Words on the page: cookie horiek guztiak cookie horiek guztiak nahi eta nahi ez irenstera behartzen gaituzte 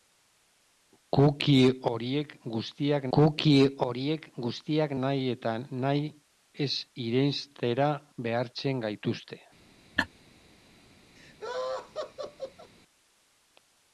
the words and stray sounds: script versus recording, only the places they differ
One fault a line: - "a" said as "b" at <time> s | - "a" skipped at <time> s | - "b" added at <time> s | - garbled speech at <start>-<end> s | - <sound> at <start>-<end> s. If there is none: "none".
- laugh at 10.0-10.1 s
- laugh at 11.2-12.7 s